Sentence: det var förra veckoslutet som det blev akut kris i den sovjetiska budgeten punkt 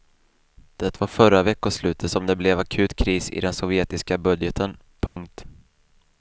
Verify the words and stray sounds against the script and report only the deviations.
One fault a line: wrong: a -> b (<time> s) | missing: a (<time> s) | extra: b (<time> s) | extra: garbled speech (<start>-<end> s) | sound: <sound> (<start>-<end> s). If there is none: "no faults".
sound: dropout (5.1-5.2 s)